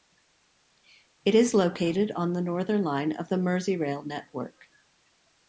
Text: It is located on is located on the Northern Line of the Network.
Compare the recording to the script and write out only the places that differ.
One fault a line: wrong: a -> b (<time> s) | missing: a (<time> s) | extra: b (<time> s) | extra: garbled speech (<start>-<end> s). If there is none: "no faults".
missing: is located on (2.3 s)
extra: Merseyrail (3.4 s)